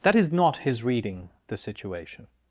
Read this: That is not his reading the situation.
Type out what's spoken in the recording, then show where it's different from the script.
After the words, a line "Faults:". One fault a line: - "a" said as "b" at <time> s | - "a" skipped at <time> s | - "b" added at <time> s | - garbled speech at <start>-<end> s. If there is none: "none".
That is not his reading the situation.
Faults:
none